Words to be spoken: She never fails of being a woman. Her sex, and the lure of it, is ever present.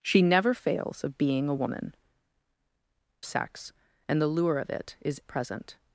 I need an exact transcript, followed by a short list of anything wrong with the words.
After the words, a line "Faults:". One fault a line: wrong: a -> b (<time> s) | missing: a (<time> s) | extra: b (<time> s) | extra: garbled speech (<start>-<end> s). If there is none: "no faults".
She never fails of being a woman. Sex, and the lure of it, is present.
Faults:
missing: Her (1.9 s)
missing: ever (5.2 s)